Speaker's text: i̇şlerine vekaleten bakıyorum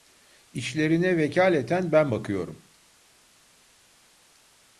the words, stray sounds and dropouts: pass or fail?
fail